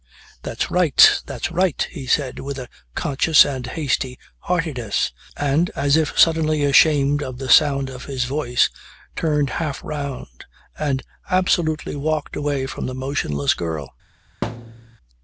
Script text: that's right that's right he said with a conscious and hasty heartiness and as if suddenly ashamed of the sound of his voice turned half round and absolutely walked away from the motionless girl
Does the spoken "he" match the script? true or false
true